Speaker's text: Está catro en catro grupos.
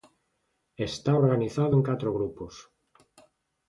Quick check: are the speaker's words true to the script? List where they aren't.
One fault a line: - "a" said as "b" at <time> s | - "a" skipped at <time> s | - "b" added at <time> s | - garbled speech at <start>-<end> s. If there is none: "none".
- "catro" said as "organizado" at 1.1 s